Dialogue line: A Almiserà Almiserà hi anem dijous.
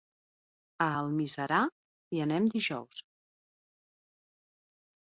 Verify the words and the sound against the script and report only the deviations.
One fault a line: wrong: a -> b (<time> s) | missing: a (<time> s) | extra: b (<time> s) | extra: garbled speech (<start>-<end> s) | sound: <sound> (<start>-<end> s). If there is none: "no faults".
missing: Almiserà (1.6 s)